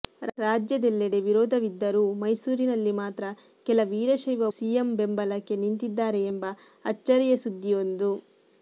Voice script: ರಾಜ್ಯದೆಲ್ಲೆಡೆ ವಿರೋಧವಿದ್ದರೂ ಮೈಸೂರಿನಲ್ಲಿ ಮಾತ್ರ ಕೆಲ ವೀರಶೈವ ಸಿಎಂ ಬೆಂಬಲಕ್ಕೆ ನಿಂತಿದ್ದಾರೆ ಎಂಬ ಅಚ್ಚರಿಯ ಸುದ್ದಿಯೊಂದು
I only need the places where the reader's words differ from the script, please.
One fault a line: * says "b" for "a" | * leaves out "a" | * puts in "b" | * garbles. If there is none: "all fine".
all fine